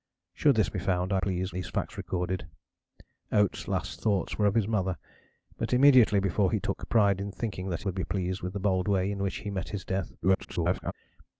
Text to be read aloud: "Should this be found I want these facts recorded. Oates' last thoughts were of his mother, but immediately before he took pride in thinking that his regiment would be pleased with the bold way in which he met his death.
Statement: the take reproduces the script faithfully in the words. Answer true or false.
false